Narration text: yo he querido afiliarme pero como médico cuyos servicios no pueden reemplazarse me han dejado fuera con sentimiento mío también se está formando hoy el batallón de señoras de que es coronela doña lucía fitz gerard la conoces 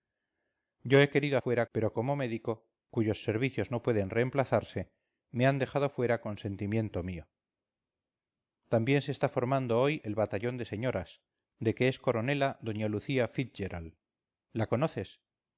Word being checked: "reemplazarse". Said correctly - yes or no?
yes